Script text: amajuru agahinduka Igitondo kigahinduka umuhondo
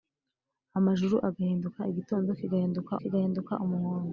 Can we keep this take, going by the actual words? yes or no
no